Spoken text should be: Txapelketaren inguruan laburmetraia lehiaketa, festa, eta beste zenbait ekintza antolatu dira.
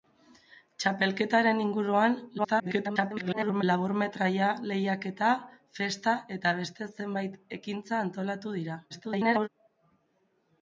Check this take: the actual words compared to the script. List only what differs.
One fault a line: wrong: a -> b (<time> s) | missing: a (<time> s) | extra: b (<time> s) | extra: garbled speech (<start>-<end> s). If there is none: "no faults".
extra: garbled speech (2.4-3.6 s)
extra: garbled speech (8.9-9.5 s)